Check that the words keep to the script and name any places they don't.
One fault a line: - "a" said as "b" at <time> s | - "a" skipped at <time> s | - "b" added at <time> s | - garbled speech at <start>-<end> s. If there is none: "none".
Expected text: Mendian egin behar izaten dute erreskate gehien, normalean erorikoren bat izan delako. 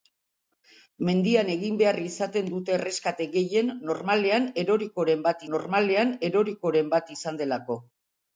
- "normalean erorikoren bat" added at 5.6 s